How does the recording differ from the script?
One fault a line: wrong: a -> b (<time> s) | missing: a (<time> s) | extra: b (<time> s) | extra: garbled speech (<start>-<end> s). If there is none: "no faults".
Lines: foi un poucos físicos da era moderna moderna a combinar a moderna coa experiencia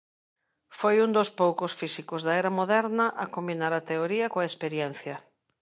extra: dos (1.2 s)
missing: moderna (3.0 s)
wrong: moderna -> teoría (3.9 s)